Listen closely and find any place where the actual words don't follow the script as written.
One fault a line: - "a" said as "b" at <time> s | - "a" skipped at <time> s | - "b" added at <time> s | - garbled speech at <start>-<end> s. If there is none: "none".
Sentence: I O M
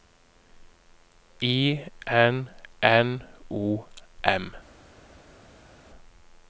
- "N N" added at 2.1 s